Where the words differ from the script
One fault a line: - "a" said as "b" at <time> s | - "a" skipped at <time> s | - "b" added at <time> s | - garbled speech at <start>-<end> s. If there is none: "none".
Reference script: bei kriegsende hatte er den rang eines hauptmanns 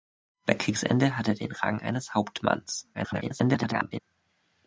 - garbled speech at 2.9-4.0 s